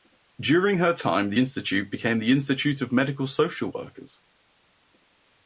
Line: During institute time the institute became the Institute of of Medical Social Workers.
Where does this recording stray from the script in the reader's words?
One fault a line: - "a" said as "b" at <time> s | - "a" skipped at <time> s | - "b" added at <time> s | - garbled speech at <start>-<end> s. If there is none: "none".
- "institute" said as "her" at 0.8 s
- "of" skipped at 2.9 s